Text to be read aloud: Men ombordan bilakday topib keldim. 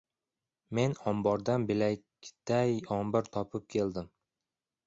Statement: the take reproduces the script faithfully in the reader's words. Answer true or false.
false